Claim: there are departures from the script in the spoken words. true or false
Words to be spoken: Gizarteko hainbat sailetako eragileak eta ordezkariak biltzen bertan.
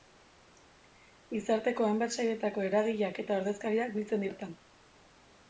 false